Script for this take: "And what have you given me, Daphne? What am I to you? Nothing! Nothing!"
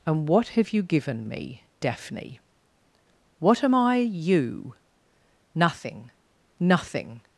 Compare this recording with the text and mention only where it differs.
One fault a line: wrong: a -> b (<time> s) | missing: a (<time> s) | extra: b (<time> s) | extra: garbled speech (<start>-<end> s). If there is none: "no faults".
missing: to (4.0 s)